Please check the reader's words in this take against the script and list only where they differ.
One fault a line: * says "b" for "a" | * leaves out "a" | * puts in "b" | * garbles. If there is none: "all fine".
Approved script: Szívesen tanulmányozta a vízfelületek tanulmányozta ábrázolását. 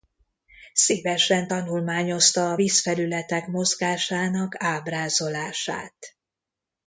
* says "mozgásának" for "tanulmányozta"